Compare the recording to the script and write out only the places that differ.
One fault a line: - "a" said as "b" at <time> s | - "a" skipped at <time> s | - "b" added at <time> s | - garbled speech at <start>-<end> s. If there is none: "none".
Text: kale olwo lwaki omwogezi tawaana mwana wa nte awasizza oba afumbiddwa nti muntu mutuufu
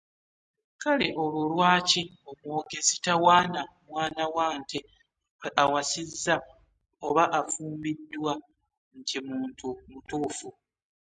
none